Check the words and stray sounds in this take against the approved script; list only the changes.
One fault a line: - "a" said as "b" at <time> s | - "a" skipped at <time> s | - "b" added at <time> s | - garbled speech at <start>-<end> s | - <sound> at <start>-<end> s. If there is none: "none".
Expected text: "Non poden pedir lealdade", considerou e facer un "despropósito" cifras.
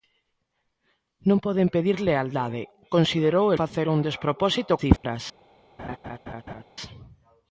- dropout at 5.0-5.0 s
- laugh at 5.8-6.6 s